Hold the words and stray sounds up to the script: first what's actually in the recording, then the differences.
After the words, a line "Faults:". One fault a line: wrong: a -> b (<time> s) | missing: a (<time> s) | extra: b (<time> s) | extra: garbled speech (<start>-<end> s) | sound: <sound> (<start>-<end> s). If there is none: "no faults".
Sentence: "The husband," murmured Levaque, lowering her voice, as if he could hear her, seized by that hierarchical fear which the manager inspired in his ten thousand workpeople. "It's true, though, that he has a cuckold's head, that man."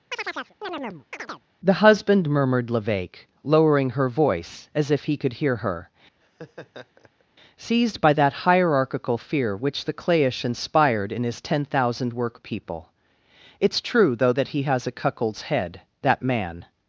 "The husband," murmured Levaque, lowering her voice, as if he could hear her, seized by that hierarchical fear which the clayish inspired in his ten thousand workpeople. "It's true, though, that he has a cuckold's head, that man."
Faults:
sound: chirp (0.1-1.4 s)
sound: laugh (6.2-7.2 s)
wrong: manager -> clayish (9.9 s)